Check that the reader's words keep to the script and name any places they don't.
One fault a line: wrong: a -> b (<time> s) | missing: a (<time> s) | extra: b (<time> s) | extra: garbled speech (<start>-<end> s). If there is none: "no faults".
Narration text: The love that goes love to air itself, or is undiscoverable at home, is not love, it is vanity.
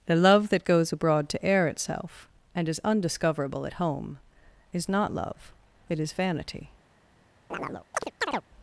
wrong: love -> abroad (0.9 s)
wrong: or -> and (2.5 s)